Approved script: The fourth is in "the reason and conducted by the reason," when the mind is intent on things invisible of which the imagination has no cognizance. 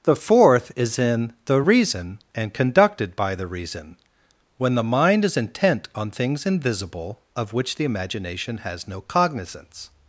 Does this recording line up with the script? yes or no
yes